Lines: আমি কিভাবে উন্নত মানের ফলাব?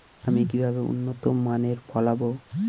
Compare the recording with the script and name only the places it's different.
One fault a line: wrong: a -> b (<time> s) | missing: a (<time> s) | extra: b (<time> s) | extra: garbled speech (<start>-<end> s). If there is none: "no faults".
no faults